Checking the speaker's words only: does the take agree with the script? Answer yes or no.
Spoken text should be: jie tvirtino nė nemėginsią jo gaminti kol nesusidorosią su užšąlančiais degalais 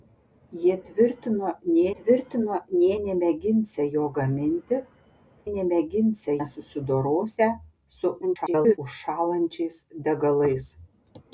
no